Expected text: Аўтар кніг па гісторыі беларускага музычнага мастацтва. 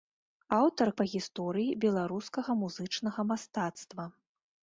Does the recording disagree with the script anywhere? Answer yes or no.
yes